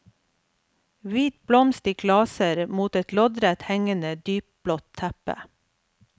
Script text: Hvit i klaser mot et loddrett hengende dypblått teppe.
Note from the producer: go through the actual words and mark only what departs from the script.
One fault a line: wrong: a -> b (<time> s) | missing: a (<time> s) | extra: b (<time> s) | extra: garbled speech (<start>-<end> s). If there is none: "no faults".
extra: blomst (1.5 s)